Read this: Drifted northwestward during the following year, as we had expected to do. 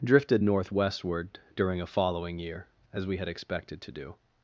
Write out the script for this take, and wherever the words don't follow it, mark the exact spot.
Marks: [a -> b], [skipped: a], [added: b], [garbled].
Drifted northwestward during [the -> a] following year, as we had expected to do.